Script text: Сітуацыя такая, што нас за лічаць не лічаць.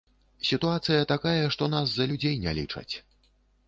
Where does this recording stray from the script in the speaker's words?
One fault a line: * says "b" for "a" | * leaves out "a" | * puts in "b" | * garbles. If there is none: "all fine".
* says "людзей" for "лічаць"